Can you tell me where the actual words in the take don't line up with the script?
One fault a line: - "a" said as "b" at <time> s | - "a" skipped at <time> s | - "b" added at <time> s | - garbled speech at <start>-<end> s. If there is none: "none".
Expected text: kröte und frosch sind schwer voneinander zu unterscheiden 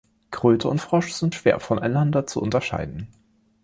none